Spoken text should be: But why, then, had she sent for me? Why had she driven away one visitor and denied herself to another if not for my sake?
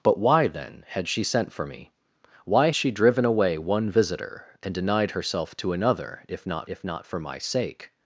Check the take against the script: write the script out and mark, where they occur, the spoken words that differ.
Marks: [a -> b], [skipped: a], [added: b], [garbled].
But why, then, had she sent for me? Why [skipped: had] she driven away one visitor and denied herself to another if not [added: if not] for my sake?